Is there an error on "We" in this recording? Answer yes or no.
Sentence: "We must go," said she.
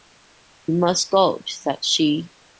no